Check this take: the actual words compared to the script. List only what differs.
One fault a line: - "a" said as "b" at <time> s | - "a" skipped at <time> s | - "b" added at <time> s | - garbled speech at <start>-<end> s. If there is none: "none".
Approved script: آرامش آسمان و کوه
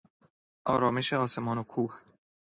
none